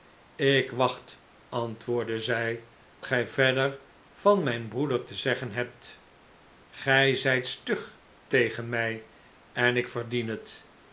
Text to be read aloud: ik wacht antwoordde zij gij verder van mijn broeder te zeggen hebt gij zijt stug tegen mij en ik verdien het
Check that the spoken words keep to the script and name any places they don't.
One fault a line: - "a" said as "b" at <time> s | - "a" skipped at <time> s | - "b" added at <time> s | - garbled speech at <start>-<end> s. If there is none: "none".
none